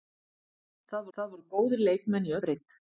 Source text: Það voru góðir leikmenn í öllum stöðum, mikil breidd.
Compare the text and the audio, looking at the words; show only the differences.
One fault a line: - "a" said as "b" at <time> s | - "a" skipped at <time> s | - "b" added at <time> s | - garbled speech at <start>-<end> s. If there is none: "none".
- "það" added at 1.2 s
- "öllum stöðum mikil" skipped at 2.4 s